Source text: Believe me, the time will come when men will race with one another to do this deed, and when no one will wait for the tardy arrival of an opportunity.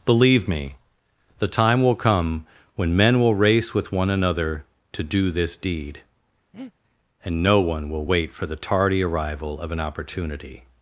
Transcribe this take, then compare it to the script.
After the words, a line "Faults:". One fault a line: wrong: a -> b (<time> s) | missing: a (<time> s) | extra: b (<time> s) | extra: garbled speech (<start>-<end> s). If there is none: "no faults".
Believe me, the time will come when men will race with one another to do this deed, and no one will wait for the tardy arrival of an opportunity.
Faults:
missing: when (7.4 s)